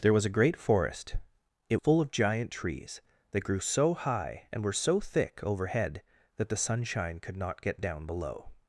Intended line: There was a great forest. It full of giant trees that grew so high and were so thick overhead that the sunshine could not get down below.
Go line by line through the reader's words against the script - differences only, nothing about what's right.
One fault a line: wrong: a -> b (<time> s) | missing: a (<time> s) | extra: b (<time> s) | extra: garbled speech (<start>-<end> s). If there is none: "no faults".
no faults